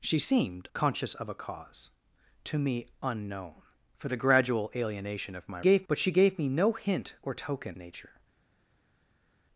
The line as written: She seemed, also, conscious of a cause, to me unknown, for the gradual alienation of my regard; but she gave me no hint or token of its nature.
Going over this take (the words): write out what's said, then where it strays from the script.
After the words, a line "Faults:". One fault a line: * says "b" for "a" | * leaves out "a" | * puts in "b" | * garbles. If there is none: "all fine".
She seemed, conscious of a cause, to me unknown, for the gradual alienation of my gave; but she gave me no hint or token nature.
Faults:
* leaves out "also"
* says "gave" for "regard"
* leaves out "of its"